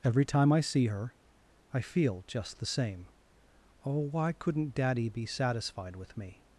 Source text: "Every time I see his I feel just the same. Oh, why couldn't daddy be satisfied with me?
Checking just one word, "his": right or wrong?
wrong